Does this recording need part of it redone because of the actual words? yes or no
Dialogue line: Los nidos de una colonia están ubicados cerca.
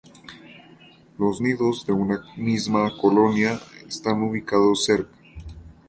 yes